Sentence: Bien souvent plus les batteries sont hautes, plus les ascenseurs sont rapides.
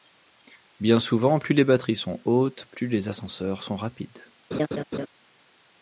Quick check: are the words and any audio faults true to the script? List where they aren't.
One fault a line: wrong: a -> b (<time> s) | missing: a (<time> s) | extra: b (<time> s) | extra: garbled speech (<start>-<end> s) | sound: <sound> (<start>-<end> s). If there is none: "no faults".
sound: laugh (4.5-5.1 s)